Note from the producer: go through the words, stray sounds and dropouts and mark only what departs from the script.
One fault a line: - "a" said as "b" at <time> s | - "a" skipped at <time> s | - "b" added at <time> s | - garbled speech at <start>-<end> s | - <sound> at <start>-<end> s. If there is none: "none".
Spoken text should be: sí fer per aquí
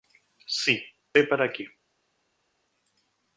none